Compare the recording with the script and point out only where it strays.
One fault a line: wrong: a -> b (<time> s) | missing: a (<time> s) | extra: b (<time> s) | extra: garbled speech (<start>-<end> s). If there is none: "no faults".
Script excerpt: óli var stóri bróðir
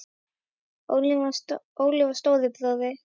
no faults